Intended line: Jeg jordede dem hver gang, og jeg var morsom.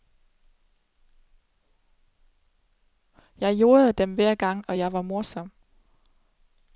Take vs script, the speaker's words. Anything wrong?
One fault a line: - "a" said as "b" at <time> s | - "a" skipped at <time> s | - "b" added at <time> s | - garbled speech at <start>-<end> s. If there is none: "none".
none